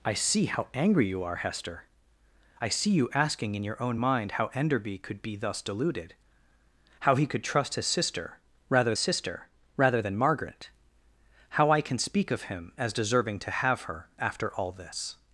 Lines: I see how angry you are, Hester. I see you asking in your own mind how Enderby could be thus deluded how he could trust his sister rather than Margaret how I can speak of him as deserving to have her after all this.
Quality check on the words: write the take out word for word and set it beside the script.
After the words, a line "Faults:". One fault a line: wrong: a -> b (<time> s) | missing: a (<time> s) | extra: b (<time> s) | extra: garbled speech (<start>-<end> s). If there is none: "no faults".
I see how angry you are, Hester. I see you asking in your own mind how Enderby could be thus deluded how he could trust his sister rather sister rather than Margaret how I can speak of him as deserving to have her after all this.
Faults:
extra: sister rather (9.0 s)